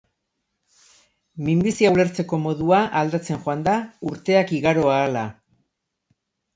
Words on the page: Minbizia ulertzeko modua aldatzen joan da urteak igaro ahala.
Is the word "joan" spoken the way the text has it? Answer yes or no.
yes